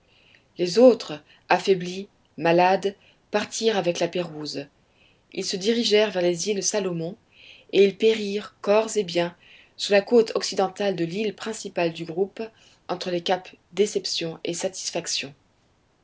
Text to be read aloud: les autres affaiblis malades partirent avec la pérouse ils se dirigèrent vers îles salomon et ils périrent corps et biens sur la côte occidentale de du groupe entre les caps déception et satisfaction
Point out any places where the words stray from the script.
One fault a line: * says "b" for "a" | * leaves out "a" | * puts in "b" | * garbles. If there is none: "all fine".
* puts in "les"
* puts in "l'île principale"